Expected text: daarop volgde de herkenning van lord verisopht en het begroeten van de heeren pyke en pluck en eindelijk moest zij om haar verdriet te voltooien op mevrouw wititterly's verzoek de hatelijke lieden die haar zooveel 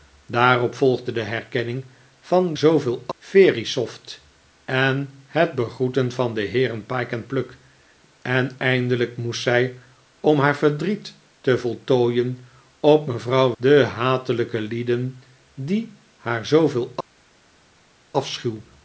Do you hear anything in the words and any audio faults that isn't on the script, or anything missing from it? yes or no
yes